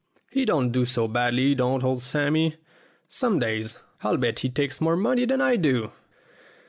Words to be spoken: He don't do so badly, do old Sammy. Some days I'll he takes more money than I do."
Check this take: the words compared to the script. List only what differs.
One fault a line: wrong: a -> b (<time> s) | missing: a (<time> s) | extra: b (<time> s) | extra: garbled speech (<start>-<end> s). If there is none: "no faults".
wrong: do -> don't (1.5 s)
extra: bet (4.2 s)